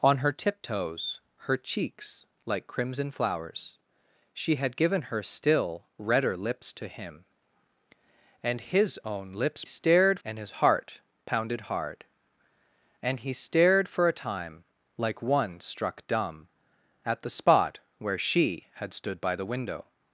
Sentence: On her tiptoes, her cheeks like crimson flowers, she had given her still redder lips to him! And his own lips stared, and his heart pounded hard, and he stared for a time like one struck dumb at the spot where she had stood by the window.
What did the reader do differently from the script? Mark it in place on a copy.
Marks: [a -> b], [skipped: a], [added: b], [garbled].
On her tiptoes, her cheeks like crimson flowers, she had given her still redder lips to him! And his own lips stared, and his heart pounded hard, and he stared for a time like one struck dumb at the spot where she had stood by the window.